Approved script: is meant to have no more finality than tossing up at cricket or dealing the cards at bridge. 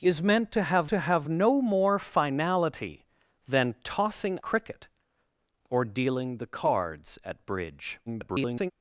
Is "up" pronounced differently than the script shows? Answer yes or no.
yes